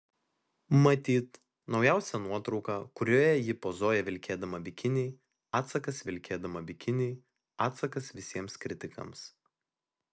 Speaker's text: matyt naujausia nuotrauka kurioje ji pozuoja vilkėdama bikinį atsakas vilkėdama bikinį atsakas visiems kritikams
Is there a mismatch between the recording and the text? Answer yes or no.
no